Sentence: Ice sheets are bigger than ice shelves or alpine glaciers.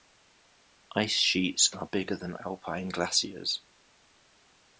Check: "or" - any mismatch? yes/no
yes